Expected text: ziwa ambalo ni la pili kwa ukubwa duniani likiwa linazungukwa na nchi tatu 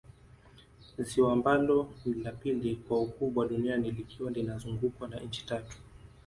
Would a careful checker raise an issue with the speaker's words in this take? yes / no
no